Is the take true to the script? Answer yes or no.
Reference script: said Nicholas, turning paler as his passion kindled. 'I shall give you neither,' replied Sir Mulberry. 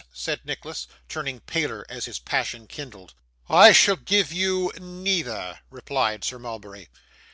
yes